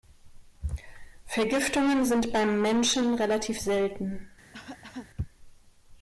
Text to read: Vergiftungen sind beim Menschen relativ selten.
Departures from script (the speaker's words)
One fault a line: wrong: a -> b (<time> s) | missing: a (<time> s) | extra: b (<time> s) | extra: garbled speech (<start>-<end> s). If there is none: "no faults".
no faults